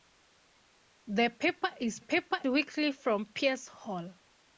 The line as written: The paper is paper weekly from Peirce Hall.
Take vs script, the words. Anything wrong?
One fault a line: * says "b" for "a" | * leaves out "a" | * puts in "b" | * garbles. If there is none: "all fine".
all fine